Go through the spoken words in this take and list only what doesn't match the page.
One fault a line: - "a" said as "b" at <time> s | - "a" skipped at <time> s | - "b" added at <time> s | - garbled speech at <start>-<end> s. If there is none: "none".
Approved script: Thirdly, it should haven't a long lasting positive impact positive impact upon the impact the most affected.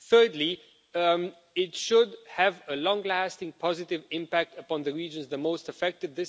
- "haven't" said as "have" at 2.4 s
- "positive impact" skipped at 4.6 s
- "impact" said as "regions" at 4.9 s